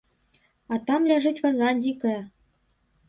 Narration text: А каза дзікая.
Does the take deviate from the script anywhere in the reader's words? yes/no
yes